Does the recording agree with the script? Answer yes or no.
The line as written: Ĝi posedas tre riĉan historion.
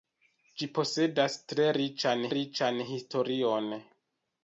no